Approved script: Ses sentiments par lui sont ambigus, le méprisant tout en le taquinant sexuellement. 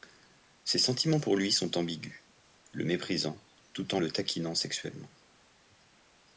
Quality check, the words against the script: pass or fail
fail